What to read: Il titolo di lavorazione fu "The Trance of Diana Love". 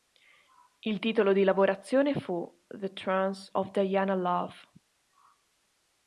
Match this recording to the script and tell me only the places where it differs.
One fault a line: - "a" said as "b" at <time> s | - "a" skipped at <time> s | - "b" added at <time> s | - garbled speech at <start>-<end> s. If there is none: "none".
none